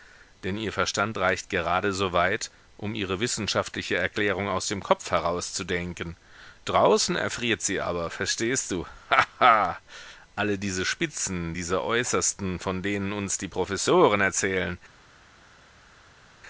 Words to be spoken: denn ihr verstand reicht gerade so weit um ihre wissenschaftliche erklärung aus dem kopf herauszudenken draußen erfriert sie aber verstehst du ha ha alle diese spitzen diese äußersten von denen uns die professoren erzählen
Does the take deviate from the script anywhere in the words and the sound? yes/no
no